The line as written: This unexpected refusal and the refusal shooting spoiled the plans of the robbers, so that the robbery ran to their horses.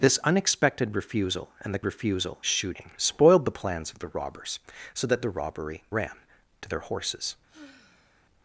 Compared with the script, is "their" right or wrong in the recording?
right